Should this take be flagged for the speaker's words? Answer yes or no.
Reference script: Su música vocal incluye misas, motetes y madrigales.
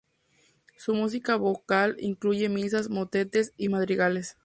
no